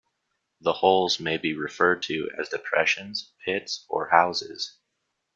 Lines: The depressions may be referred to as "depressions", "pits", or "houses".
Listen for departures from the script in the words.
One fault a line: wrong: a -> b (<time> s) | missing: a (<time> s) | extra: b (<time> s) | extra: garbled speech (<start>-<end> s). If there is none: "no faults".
wrong: depressions -> holes (0.7 s)